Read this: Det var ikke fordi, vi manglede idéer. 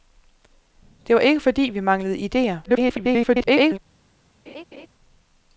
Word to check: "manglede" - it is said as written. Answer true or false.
true